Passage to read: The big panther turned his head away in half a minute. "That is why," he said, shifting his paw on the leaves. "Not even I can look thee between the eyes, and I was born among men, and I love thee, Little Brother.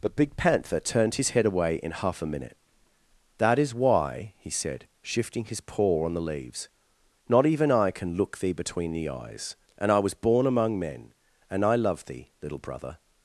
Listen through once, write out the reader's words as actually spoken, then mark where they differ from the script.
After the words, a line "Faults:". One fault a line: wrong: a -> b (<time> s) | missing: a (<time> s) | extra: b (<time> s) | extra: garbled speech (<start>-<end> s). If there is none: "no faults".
But big panther turned his head away in half a minute. "That is why," he said, shifting his paw on the leaves. "Not even I can look thee between the eyes, and I was born among men, and I love thee, Little Brother.
Faults:
wrong: The -> But (0.0 s)